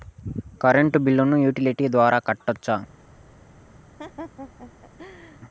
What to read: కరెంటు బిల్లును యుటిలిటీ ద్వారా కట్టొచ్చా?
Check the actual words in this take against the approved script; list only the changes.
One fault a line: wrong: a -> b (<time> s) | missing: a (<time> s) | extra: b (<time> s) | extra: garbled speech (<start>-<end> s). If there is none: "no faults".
no faults